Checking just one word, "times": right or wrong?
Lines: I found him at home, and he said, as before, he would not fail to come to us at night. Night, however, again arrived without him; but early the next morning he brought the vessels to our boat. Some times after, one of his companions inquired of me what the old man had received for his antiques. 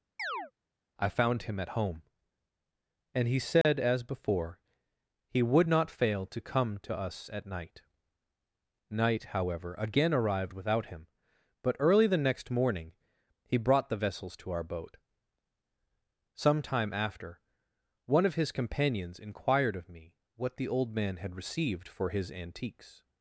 wrong